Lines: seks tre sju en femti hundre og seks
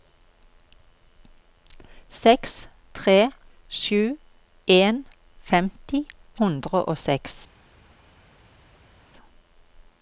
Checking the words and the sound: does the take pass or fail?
pass